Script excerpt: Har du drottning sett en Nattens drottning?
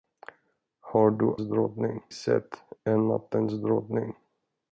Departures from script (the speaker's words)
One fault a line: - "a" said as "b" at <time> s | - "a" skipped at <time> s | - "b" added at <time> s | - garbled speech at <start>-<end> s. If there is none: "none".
none